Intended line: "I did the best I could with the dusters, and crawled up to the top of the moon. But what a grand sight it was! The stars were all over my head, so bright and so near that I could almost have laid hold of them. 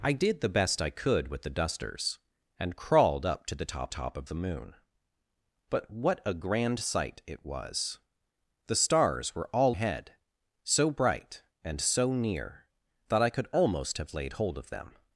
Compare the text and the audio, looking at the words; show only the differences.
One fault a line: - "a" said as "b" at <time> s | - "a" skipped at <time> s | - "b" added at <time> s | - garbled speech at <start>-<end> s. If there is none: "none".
- "top" added at 3.9 s
- "over my" skipped at 9.8 s